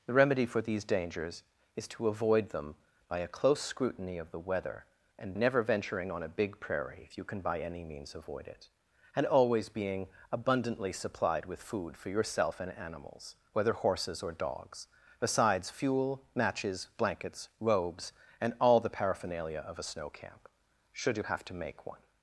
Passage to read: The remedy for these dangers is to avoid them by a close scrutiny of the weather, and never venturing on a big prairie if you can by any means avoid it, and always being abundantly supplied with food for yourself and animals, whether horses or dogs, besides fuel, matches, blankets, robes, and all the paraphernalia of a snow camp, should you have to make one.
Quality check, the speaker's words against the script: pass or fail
pass